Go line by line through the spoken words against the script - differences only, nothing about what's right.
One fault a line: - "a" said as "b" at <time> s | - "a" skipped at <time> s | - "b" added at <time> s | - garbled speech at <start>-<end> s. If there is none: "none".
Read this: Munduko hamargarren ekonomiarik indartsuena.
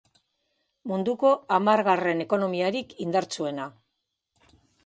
none